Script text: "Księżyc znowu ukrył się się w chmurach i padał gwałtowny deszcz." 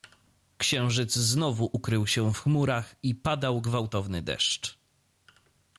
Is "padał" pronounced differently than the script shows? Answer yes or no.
no